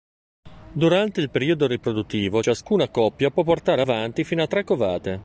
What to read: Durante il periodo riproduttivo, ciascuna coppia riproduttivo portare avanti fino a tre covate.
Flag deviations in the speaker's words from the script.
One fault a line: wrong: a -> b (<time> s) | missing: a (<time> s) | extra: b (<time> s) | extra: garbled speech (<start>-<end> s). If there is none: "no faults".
wrong: riproduttivo -> può (3.3 s)